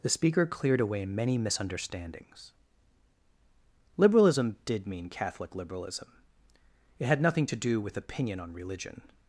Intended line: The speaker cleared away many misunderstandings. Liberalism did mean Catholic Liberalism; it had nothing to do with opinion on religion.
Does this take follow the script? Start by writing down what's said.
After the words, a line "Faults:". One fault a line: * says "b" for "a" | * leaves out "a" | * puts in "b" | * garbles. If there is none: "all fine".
The speaker cleared away many misunderstandings. Liberalism did mean Catholic Liberalism; it had nothing to do with opinion on religion.
Faults:
all fine